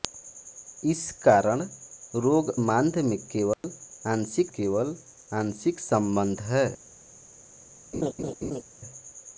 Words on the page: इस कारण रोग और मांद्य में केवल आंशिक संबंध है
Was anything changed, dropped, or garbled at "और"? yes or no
yes